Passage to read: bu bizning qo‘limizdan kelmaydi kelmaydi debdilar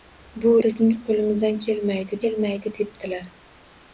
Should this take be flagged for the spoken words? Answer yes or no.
no